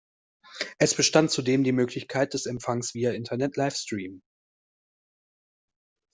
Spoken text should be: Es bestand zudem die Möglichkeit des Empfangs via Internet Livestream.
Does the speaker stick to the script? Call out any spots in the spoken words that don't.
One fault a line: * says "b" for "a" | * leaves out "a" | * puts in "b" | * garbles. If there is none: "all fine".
all fine